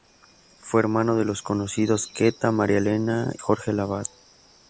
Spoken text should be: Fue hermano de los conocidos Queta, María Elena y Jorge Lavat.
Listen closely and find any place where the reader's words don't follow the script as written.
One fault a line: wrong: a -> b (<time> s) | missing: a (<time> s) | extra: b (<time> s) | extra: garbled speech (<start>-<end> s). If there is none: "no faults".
missing: y (3.3 s)